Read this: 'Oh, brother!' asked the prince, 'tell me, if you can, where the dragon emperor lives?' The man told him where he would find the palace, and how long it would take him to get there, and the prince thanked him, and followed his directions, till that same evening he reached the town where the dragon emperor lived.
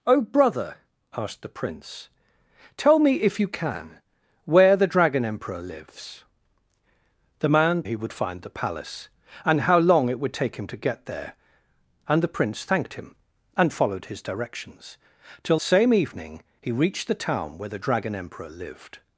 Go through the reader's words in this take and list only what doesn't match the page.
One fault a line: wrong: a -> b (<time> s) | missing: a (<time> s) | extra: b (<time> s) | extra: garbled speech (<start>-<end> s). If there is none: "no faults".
missing: told him where (7.8 s)
missing: that (15.6 s)